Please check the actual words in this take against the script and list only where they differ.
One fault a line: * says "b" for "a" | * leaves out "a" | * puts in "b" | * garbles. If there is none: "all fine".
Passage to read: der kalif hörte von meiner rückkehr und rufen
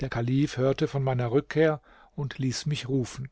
* puts in "ließ mich"